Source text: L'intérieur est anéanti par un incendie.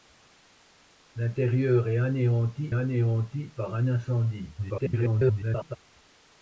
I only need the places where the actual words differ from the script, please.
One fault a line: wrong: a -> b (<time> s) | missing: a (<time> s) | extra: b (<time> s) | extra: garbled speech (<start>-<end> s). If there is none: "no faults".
extra: anéanti (2.7 s)
extra: garbled speech (4.6-5.8 s)